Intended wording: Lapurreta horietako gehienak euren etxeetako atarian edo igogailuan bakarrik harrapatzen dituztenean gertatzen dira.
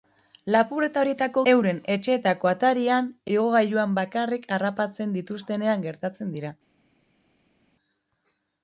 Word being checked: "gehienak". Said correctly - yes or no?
no